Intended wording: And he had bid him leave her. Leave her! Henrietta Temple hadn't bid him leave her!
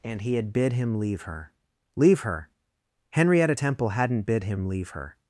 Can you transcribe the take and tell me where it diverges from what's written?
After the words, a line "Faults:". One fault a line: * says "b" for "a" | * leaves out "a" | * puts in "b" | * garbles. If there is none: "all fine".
And he had bid him leave her. Leave her! Henrietta Temple hadn't bid him leave her!
Faults:
all fine